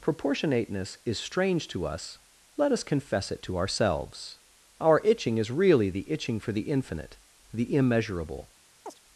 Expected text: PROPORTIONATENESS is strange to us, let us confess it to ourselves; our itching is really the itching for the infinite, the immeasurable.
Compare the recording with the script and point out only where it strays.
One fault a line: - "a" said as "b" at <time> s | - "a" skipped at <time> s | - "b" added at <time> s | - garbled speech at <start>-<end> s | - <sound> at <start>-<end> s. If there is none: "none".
- chirp at 8.9-9.0 s